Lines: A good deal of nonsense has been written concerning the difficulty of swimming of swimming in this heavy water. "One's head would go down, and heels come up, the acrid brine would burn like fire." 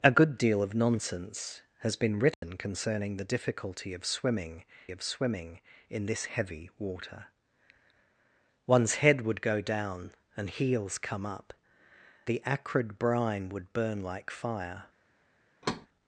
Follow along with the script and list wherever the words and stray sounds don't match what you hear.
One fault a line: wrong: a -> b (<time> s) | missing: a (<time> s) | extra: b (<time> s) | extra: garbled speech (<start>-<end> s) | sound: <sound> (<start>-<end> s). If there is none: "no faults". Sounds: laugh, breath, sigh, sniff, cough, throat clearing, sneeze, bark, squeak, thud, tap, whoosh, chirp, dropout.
sound: dropout (2.3-2.4 s)
sound: thud (15.6-15.9 s)